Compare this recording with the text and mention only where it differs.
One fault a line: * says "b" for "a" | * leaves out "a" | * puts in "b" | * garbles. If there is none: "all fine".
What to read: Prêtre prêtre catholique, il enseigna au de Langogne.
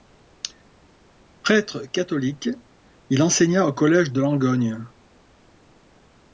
* leaves out "prêtre"
* puts in "collège"